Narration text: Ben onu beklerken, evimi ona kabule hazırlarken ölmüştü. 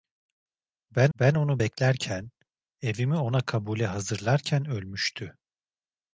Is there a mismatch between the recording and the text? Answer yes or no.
yes